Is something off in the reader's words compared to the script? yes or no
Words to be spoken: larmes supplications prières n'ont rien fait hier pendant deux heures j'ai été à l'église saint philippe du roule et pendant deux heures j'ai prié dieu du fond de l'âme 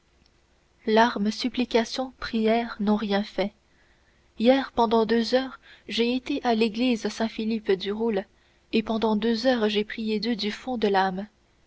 no